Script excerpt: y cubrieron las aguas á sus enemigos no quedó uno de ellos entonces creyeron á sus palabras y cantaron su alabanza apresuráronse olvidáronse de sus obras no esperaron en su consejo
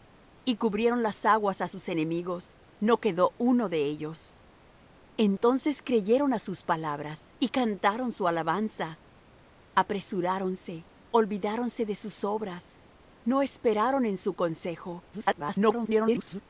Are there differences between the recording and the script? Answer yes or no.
yes